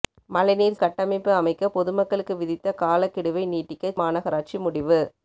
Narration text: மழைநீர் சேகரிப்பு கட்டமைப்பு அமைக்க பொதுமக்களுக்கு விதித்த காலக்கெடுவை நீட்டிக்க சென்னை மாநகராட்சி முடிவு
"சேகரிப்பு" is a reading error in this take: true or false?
true